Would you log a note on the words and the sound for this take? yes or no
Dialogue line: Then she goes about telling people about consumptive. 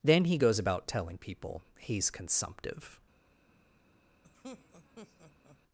yes